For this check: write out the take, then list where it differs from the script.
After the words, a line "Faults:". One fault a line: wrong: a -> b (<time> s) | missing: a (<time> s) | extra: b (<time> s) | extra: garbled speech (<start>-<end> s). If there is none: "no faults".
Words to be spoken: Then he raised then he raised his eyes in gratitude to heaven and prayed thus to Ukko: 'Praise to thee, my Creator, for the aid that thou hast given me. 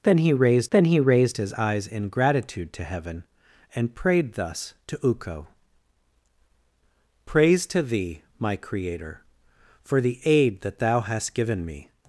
Then he raised then he raised his eyes in gratitude to heaven and prayed thus to Ukko: 'Praise to thee, my Creator, for the aid that thou hast given me.
Faults:
no faults